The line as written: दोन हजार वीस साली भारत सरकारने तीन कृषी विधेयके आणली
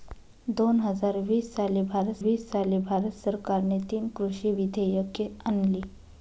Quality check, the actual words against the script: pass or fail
fail